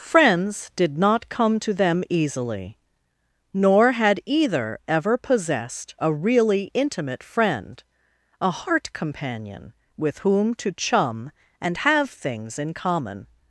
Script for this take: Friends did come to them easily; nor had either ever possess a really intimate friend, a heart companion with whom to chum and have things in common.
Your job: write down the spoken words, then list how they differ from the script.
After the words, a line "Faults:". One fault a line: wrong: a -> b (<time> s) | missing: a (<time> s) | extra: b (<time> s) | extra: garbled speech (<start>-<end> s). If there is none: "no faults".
Friends did not come to them easily; nor had either ever possessed a really intimate friend, a heart companion with whom to chum and have things in common.
Faults:
extra: not (1.0 s)
wrong: possess -> possessed (5.2 s)